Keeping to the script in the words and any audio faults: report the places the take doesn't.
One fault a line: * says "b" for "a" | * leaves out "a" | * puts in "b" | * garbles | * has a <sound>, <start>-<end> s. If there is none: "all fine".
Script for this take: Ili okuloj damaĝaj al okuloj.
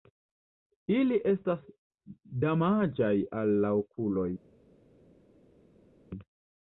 * says "estas" for "okuloj"
* puts in "la"